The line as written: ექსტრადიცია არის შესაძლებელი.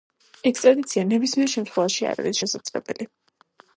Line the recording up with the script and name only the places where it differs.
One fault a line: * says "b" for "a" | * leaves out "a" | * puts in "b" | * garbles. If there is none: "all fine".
* puts in "ნებისმიერ შემთხვევაში არ"